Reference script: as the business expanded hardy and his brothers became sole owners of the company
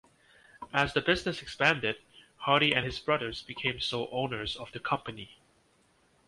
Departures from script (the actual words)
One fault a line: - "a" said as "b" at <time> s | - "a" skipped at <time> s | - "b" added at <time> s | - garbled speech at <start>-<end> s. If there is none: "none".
none